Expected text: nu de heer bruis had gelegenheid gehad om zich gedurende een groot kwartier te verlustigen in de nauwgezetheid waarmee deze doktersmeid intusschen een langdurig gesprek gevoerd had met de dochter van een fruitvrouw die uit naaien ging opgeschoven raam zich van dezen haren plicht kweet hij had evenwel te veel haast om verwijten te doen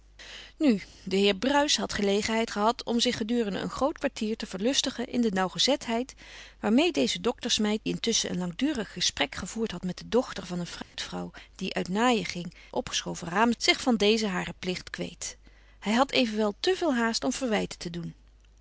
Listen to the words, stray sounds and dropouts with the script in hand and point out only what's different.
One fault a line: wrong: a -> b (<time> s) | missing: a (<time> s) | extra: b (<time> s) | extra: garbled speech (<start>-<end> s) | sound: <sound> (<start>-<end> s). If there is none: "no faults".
sound: dropout (10.8-10.9 s)